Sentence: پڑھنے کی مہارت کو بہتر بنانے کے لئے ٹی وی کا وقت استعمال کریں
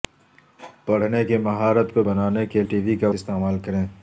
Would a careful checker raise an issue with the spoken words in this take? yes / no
yes